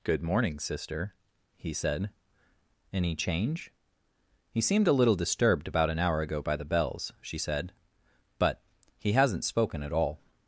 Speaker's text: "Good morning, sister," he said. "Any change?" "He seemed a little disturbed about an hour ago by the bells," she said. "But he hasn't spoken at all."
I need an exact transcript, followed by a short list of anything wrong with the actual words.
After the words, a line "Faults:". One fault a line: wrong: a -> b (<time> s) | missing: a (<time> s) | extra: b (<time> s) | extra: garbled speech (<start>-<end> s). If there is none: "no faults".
"Good morning, sister," he said. "Any change?" "He seemed a little disturbed about an hour ago by the bells," she said. "But he hasn't spoken at all."
Faults:
no faults